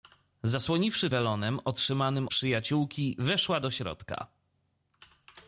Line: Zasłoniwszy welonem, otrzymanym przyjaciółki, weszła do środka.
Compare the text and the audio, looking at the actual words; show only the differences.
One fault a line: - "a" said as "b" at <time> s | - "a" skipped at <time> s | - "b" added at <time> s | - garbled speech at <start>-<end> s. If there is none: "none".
none